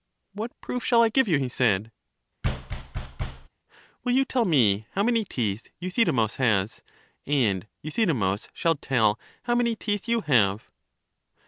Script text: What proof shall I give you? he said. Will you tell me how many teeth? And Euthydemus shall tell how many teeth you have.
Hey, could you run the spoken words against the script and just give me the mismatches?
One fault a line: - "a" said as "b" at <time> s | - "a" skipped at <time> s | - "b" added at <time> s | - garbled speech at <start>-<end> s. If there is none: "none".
- "Euthydemus has" added at 5.8 s